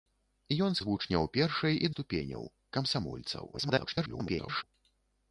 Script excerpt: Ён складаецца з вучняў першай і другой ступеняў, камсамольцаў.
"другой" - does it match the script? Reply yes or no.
no